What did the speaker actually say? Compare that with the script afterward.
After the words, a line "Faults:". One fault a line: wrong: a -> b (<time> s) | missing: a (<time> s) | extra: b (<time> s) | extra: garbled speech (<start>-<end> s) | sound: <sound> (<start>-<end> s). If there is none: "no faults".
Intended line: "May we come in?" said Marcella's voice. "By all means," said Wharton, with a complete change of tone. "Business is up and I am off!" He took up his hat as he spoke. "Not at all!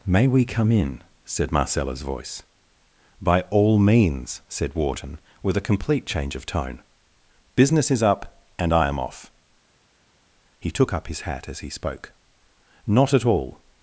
"May we come in?" said Marcella's voice. "By all means," said Wharton, with a complete change of tone. "Business is up and I am off!" He took up his hat as he spoke. "Not at all!
Faults:
no faults